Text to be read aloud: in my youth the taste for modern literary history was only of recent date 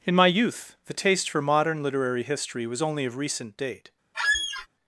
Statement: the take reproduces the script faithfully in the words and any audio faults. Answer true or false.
false